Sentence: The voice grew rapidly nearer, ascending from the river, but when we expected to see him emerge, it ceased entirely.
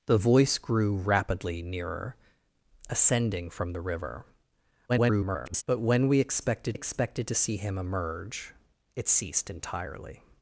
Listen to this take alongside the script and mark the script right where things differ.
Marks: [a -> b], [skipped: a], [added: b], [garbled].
The voice grew rapidly nearer, ascending from the river, [garbled] but when we expected [added: expected] to see him emerge, it ceased entirely.